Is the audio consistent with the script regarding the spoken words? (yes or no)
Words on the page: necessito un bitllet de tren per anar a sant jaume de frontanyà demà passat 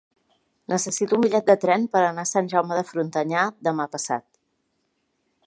yes